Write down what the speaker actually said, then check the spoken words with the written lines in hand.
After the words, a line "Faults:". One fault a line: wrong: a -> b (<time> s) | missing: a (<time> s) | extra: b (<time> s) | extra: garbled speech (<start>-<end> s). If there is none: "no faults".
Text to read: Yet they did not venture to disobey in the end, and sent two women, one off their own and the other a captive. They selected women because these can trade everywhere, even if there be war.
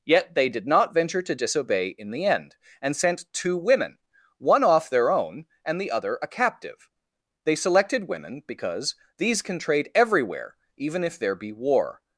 Yet they did not venture to disobey in the end, and sent two women, one off their own and the other a captive. They selected women because these can trade everywhere, even if there be war.
Faults:
no faults